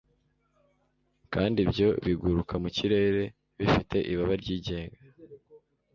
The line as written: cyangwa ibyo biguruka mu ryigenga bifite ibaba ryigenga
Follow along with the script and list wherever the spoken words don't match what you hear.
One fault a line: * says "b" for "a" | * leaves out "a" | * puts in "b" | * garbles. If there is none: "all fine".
* says "kandi" for "cyangwa"
* says "kirere" for "ryigenga"